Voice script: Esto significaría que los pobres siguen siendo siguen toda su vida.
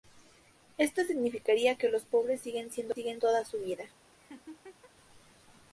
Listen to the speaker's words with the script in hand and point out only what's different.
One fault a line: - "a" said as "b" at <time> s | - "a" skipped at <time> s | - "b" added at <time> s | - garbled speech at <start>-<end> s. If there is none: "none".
none